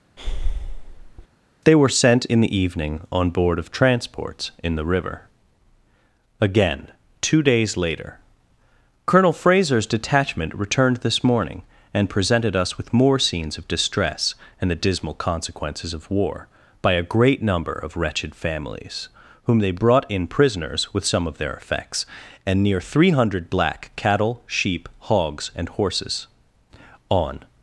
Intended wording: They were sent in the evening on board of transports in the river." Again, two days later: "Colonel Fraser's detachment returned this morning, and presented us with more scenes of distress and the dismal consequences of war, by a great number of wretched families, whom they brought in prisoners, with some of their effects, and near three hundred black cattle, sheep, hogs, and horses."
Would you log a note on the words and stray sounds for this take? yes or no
yes